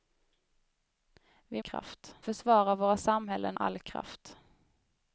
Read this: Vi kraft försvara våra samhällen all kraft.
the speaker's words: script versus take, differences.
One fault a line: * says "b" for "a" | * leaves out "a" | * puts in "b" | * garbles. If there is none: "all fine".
all fine